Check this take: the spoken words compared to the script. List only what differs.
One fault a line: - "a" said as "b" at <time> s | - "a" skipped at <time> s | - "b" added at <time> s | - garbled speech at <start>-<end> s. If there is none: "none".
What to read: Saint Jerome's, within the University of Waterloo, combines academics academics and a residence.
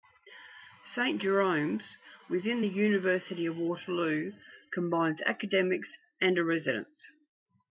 - "academics" skipped at 5.9 s